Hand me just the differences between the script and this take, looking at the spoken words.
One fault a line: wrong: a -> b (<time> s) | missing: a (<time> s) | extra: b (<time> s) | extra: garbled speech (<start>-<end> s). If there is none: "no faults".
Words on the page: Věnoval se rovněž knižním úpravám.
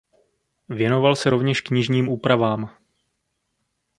no faults